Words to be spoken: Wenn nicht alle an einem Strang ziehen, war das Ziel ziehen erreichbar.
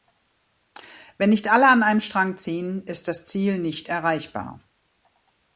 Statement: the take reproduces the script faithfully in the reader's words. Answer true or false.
false